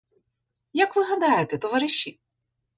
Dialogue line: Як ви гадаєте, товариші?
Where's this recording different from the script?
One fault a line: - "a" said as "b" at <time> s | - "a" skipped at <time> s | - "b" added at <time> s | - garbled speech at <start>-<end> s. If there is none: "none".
none